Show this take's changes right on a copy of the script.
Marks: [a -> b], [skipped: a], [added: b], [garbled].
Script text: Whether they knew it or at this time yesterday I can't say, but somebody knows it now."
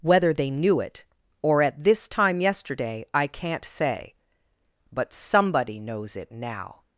Whether they knew it or at this time yesterday I can't say, but somebody knows it now."